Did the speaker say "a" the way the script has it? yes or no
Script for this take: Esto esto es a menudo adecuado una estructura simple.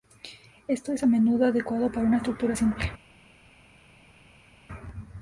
yes